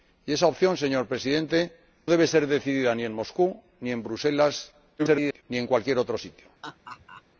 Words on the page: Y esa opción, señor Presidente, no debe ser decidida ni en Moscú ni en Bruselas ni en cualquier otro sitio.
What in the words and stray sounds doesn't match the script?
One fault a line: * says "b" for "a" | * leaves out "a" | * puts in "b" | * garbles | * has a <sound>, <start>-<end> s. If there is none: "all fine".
* leaves out "no"
* garbles
* has a laugh, 6.6-7.2 s